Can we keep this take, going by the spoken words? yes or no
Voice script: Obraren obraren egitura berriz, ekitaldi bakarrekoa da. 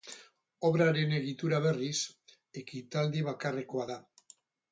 no